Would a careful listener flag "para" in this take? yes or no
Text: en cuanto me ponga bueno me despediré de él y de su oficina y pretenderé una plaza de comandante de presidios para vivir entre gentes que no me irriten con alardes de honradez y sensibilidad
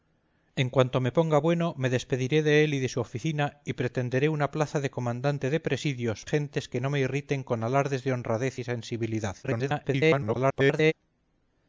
yes